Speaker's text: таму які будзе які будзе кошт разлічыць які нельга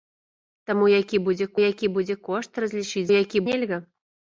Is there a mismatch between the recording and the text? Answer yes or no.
no